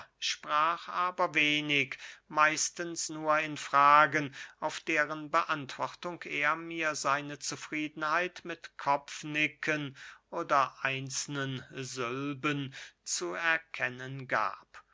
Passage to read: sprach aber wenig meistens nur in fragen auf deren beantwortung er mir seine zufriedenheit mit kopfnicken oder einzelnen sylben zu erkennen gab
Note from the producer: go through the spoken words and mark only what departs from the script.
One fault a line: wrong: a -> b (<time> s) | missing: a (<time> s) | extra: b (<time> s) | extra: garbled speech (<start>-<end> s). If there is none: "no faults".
no faults